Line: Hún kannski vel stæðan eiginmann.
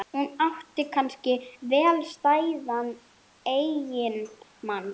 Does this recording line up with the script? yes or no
no